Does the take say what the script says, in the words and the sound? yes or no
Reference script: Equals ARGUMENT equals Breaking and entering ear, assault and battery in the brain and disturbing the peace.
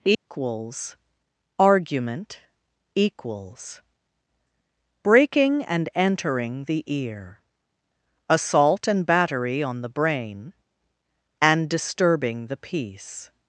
no